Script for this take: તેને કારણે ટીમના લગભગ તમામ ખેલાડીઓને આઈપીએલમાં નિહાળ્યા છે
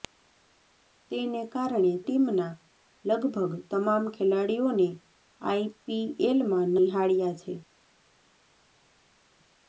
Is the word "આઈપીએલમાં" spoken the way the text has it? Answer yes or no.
yes